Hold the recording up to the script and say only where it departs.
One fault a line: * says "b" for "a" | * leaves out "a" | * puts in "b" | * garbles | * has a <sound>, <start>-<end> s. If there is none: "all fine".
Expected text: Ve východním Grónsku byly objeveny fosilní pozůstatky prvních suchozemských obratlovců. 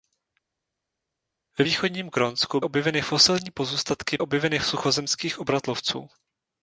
* leaves out "byly"
* says "objeveny" for "prvních"